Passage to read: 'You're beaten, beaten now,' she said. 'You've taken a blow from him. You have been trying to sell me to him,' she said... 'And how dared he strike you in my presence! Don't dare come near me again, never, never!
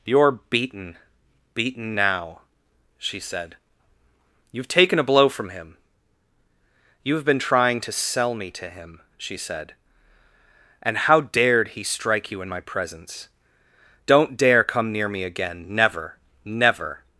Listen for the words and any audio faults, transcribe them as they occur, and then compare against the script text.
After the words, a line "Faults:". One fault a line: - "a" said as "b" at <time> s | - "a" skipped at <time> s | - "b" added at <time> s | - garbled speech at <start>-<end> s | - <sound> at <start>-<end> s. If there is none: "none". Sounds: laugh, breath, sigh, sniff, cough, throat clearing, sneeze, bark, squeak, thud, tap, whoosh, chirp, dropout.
'You're beaten, beaten now,' she said. 'You've taken a blow from him. You have been trying to sell me to him,' she said... 'And how dared he strike you in my presence! Don't dare come near me again, never, never!
Faults:
none